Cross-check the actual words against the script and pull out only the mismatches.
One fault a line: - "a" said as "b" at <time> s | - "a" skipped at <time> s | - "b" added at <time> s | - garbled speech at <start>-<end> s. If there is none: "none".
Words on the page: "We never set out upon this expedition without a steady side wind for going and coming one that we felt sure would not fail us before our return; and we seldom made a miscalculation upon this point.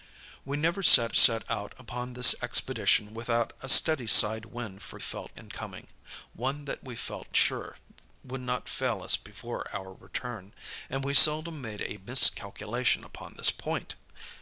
- "set" added at 1.1 s
- "going" said as "felt" at 5.0 s